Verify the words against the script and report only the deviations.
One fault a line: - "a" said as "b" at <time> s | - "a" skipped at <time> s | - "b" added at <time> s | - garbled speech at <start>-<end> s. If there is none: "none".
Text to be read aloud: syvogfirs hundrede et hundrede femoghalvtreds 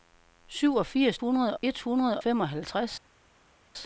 none